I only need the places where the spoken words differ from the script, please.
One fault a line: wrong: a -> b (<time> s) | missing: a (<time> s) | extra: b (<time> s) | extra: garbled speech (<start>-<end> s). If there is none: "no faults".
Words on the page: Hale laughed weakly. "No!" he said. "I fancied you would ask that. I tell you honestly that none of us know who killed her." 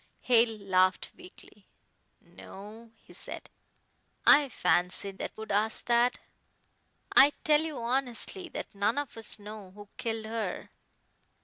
wrong: you -> that (5.1 s)